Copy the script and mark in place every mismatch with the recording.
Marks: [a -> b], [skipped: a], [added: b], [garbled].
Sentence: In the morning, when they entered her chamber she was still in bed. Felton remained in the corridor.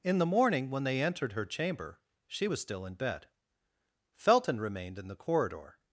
In the morning, when they entered her chamber she was still in bed. Felton remained in the corridor.